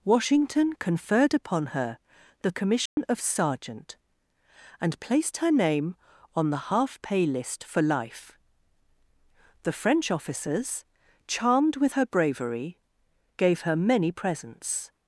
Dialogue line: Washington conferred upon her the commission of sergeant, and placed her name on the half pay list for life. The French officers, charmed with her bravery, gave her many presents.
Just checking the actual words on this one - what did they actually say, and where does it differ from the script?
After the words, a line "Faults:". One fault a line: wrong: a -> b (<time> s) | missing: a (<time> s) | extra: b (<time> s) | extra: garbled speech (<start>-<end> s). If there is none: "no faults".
Washington conferred upon her the commission of sergeant, and placed her name on the half pay list for life. The French officers, charmed with her bravery, gave her many presents.
Faults:
no faults